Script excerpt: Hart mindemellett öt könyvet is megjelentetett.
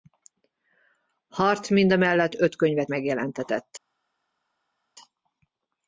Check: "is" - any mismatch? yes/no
yes